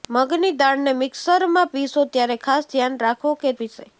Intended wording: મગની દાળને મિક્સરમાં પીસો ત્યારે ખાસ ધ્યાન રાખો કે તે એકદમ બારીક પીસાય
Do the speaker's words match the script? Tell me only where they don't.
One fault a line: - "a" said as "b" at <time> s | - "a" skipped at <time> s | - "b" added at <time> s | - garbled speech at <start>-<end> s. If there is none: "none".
- "તે એકદમ બારીક" skipped at 3.5 s